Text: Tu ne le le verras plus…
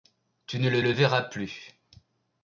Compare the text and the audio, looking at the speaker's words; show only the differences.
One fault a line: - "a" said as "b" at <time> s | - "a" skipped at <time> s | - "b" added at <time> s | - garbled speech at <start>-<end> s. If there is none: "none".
none